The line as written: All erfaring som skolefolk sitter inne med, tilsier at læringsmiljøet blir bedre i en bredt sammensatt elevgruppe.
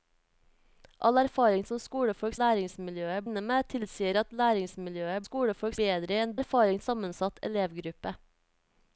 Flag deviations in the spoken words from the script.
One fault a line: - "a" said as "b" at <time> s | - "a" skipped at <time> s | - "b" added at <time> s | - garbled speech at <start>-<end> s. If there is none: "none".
- "sitter" said as "læringsmiljøet" at 2.4 s
- "blir" said as "skolefolk" at 5.2 s
- "bredt" said as "erfaring" at 6.4 s